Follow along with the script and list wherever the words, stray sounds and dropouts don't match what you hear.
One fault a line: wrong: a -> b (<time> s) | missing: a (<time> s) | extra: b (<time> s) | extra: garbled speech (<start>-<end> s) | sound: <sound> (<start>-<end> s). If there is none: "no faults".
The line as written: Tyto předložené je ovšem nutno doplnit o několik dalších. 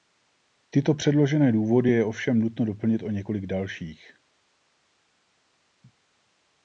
extra: důvody (1.5 s)